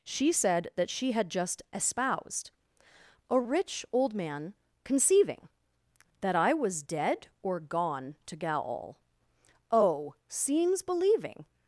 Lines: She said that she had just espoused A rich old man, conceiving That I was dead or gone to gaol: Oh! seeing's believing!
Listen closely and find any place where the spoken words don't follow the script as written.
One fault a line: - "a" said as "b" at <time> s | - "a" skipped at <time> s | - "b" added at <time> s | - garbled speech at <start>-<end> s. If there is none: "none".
none